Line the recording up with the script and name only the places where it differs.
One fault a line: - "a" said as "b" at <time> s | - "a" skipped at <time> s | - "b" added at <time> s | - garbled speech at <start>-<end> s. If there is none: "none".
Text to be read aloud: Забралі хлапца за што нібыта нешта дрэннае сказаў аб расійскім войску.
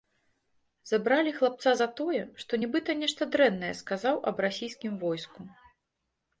- "тое" added at 2.0 s